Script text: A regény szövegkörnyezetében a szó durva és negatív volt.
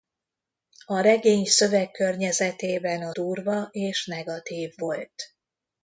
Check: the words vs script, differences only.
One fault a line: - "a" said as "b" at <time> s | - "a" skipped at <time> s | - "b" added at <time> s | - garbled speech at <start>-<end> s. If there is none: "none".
- "szó" skipped at 3.1 s